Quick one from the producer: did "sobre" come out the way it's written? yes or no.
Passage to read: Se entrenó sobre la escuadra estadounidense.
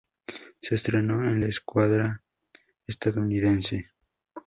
no